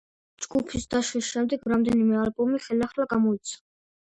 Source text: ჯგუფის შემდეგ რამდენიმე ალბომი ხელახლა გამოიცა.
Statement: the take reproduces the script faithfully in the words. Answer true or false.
false